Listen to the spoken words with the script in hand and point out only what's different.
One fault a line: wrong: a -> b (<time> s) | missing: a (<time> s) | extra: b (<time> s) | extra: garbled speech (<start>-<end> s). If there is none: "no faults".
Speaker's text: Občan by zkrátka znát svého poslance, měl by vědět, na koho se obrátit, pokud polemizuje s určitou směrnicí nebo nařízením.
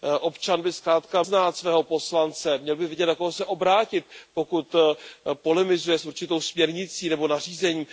no faults